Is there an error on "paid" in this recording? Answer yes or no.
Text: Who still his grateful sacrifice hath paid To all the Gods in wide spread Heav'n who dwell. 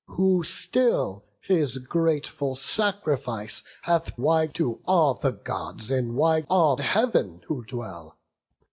yes